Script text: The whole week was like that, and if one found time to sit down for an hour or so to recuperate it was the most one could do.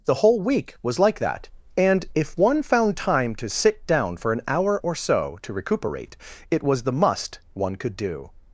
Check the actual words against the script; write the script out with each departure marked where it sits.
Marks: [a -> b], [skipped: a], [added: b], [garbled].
The whole week was like that, and if one found time to sit down for an hour or so to recuperate it was the [most -> must] one could do.